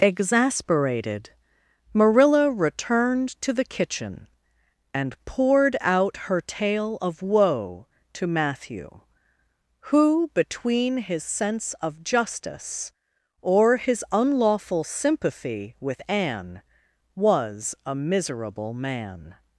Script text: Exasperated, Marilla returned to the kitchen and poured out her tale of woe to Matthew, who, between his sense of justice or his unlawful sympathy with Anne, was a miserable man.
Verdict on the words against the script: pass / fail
pass